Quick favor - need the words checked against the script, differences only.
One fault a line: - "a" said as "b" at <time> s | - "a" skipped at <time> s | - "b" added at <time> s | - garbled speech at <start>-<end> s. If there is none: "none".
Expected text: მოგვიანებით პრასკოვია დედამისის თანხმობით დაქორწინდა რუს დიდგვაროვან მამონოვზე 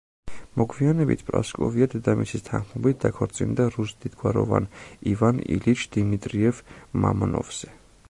- "ივან ილიჩ დიმიტრიევ" added at 5.2 s